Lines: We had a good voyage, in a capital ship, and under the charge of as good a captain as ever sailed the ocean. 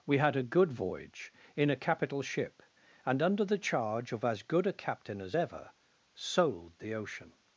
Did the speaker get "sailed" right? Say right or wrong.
wrong